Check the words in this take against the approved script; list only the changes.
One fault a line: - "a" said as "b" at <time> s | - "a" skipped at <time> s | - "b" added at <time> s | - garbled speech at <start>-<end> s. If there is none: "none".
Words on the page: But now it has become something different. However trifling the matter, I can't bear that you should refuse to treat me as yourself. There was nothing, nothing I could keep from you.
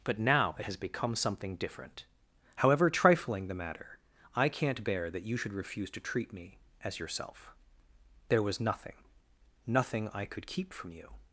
none